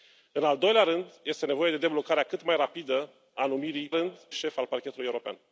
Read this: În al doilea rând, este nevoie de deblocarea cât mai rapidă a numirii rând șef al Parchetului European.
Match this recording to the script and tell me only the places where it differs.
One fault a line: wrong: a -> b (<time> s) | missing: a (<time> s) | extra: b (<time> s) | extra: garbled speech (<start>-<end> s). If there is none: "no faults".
no faults